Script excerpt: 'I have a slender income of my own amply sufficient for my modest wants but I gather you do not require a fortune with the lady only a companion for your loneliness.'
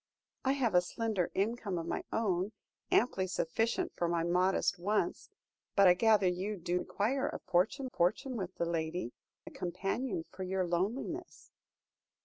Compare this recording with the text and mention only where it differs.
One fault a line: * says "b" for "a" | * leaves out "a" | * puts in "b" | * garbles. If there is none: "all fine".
* leaves out "not"
* puts in "fortune"
* leaves out "only"